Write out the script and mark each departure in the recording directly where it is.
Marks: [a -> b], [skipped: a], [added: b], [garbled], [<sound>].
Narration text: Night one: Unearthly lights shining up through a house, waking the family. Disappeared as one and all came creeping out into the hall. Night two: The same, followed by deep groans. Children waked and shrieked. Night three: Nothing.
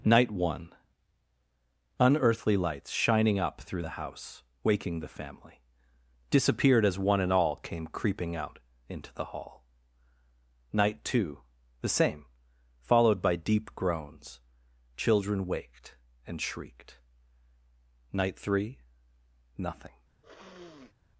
Night one: Unearthly lights shining up through [a -> the] house, waking the family. Disappeared as one and all came creeping out into the hall. Night two: The same, followed by deep groans. Children waked and shrieked. Night three: Nothing. [sniff]